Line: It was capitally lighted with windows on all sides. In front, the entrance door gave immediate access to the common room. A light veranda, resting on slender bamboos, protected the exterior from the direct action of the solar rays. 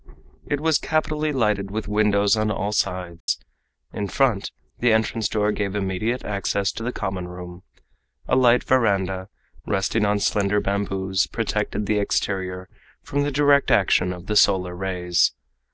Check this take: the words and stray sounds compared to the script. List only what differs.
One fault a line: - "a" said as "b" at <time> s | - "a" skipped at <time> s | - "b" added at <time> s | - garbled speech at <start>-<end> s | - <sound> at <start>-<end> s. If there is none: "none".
- dropout at 3.2-3.3 s